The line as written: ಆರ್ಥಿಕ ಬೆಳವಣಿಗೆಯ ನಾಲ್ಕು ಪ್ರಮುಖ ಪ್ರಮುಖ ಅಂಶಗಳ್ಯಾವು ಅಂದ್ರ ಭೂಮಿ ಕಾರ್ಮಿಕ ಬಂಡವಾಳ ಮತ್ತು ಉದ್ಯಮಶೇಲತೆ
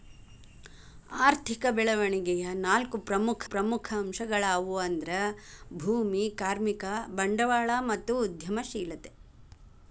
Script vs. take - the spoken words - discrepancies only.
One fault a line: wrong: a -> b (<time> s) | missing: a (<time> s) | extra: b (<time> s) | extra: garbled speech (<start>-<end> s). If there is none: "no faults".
no faults